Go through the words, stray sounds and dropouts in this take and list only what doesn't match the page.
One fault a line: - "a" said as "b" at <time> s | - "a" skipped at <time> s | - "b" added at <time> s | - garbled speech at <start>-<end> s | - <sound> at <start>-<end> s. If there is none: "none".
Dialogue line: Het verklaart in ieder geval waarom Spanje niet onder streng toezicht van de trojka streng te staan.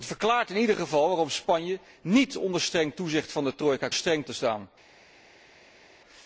none